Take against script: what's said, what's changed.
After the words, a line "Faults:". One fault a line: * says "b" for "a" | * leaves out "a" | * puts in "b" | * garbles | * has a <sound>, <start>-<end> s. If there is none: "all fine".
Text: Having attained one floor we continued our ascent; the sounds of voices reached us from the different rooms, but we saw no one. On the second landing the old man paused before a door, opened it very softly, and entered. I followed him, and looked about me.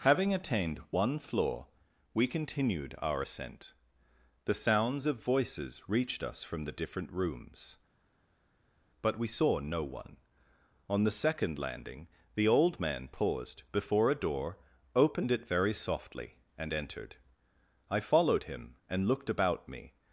Having attained one floor we continued our ascent; the sounds of voices reached us from the different rooms, but we saw no one. On the second landing the old man paused before a door, opened it very softly, and entered. I followed him, and looked about me.
Faults:
all fine